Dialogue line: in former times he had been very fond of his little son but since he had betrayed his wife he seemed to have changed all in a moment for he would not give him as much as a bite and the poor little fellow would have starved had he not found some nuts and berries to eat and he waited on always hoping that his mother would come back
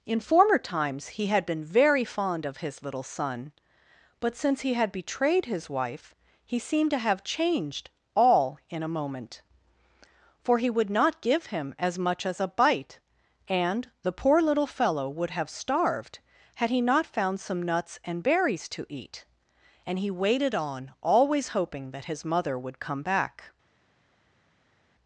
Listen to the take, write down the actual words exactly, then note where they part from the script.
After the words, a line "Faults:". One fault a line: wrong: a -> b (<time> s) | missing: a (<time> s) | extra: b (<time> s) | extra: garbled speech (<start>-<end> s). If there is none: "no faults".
in former times he had been very fond of his little son but since he had betrayed his wife he seemed to have changed all in a moment for he would not give him as much as a bite and the poor little fellow would have starved had he not found some nuts and berries to eat and he waited on always hoping that his mother would come back
Faults:
no faults